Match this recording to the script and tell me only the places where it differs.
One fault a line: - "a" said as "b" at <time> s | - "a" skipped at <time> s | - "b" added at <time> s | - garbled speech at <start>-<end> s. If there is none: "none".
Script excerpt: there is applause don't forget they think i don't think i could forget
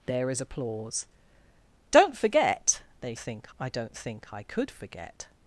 none